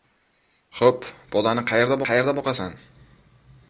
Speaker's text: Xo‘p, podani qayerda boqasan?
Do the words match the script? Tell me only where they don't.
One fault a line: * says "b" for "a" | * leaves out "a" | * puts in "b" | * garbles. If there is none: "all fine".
* puts in "qayerda"